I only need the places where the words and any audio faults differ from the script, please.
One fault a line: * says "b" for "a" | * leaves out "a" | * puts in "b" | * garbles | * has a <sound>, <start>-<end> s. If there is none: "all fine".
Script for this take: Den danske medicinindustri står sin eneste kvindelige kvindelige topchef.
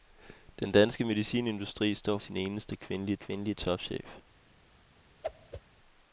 * has a whoosh, 5.2-5.6 s